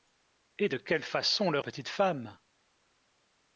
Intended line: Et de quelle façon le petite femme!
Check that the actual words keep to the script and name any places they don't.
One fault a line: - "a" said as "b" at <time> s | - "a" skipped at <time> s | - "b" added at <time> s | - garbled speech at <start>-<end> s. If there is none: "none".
none